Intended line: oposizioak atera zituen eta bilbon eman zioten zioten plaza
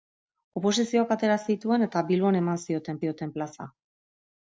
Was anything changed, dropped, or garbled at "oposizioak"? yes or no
no